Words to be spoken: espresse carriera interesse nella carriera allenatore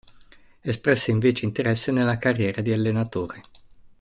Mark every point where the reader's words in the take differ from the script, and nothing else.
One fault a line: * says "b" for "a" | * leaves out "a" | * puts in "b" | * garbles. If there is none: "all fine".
* says "invece" for "carriera"
* puts in "di"